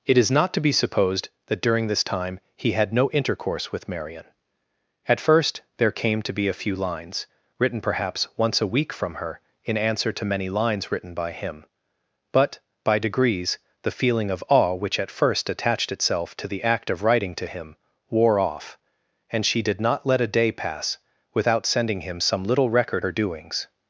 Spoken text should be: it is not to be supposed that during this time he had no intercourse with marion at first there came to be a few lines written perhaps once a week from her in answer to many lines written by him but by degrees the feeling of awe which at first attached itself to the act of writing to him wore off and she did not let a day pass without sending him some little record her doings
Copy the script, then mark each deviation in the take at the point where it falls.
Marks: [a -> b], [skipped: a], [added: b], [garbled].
it is not to be supposed that during this time he had no intercourse with marion at first there came to be a few lines written perhaps once a week from her in answer to many lines written by him but by degrees the feeling of awe which at first attached itself to the act of writing to him wore off and she did not let a day pass without sending him some little record her doings